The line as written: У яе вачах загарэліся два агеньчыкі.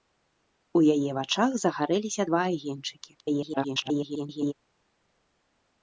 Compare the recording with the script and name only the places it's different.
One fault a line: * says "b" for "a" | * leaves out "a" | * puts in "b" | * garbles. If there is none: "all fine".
* garbles